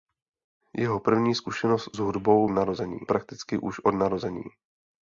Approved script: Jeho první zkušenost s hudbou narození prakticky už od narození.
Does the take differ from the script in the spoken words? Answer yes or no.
no